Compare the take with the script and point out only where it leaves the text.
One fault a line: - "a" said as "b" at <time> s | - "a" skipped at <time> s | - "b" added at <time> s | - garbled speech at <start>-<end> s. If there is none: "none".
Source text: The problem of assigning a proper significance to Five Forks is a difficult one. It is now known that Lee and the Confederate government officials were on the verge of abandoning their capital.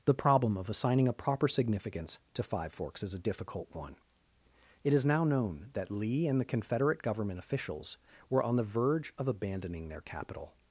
none